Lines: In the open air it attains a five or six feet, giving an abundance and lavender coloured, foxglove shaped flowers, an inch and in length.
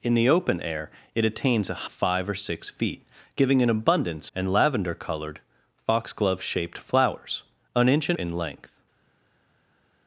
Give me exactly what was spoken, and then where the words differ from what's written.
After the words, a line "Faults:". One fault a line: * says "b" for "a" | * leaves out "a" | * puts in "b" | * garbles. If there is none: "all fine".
In the open air it attains a five or six feet, giving an abundance and lavender coloured, foxglove shaped flowers, an inch and in length.
Faults:
all fine